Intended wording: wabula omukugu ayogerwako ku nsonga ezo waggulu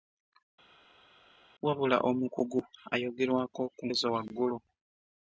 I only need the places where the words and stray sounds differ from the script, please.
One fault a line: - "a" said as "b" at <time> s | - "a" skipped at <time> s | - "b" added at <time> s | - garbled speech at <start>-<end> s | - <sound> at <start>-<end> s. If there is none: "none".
- "nsonga" skipped at 3.8 s